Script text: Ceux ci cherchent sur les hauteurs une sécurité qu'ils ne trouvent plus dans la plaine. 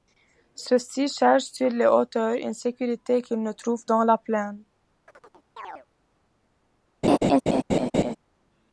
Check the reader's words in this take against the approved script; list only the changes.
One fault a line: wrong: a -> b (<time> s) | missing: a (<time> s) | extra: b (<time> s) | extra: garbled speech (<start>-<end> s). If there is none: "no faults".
missing: plus (3.9 s)